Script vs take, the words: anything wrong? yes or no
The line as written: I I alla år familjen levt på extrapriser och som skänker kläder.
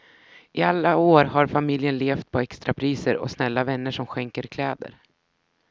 yes